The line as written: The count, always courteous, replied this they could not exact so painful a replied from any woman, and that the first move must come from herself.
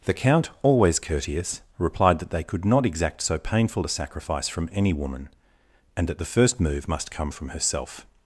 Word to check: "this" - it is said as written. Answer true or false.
false